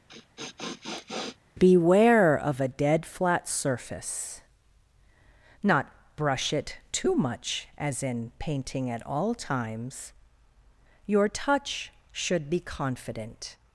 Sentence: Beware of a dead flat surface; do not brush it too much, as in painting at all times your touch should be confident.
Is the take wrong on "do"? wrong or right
wrong